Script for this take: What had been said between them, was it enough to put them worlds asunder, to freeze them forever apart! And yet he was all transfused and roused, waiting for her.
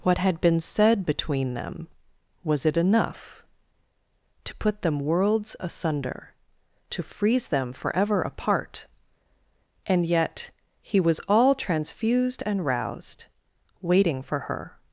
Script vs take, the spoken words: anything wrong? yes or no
no